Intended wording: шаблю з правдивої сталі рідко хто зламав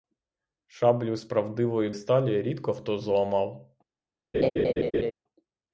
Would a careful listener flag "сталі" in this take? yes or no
no